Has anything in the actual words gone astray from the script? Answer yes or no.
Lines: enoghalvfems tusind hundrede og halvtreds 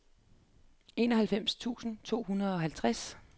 yes